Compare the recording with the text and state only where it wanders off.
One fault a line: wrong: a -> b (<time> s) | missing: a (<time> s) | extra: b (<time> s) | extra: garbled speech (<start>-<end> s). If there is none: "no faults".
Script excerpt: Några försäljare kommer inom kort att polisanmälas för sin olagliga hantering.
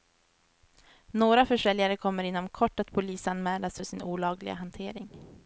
no faults